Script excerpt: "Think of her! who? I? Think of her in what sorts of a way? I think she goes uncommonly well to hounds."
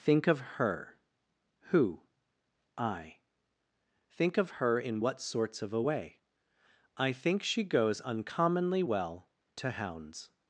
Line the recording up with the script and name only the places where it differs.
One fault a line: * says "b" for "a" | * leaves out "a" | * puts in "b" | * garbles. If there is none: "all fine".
all fine